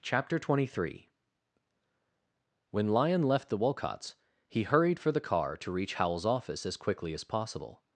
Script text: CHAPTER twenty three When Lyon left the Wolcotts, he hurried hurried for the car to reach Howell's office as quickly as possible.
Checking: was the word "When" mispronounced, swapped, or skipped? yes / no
no